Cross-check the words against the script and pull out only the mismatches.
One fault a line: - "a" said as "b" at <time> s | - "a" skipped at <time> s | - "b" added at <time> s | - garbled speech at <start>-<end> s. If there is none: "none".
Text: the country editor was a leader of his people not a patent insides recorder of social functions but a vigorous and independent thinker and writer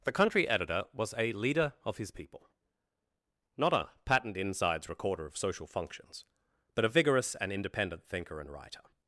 none